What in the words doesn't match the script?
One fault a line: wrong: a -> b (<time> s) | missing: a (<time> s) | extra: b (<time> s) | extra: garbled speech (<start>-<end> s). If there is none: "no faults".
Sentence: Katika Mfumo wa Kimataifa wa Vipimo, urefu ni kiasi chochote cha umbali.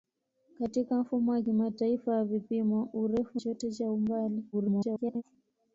missing: ni kiasi (3.4 s)
extra: garbled speech (4.5-5.2 s)